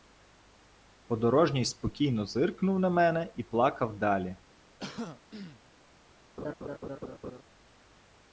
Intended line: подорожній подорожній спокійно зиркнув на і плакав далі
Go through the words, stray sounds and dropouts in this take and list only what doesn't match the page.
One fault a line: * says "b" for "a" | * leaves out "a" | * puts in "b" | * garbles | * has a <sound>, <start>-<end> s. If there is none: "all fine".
* leaves out "подорожній"
* puts in "мене"
* has a throat clearing, 4.8-5.6 s
* has a laugh, 6.4-7.4 s